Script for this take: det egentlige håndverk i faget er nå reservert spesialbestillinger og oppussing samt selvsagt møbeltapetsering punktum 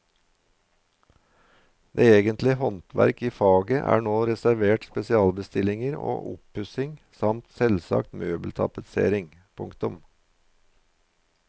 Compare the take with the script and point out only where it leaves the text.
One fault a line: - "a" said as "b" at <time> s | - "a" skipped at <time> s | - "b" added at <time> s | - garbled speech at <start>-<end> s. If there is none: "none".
none